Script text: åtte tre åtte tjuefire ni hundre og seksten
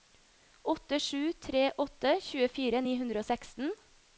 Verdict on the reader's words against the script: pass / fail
fail